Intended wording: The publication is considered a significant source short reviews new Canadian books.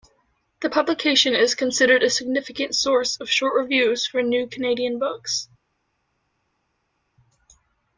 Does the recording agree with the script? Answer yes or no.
no